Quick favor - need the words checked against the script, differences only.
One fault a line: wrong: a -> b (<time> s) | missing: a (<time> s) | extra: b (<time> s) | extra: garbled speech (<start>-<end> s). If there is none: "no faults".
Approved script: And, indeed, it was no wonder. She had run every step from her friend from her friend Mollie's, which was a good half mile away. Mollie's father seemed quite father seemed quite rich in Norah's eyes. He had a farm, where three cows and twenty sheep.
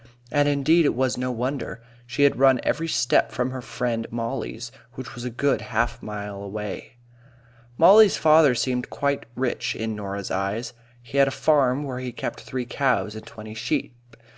missing: from her friend (4.1 s)
missing: father seemed quite (9.2 s)
extra: he kept (12.0 s)